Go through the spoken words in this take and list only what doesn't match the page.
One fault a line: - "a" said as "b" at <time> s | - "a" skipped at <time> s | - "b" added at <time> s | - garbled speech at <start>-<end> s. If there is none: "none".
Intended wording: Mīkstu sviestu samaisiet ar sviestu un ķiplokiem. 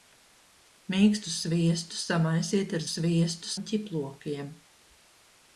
none